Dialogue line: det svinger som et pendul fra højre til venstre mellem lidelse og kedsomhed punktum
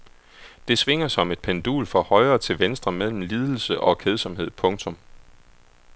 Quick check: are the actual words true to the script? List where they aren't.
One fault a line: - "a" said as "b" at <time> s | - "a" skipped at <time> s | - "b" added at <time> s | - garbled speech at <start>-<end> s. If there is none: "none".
none